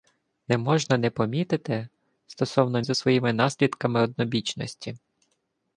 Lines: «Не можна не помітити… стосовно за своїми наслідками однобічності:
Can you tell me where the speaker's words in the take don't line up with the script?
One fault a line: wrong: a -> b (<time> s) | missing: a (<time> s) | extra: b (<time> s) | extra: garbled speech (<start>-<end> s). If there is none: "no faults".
no faults